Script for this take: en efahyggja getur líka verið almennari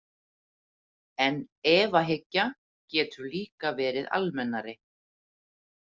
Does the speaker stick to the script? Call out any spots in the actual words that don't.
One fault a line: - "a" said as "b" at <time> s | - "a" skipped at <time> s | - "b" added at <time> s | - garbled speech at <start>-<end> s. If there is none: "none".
none